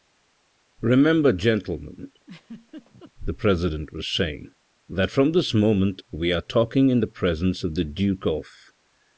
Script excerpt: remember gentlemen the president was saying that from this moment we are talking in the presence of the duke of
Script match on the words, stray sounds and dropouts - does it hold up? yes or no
no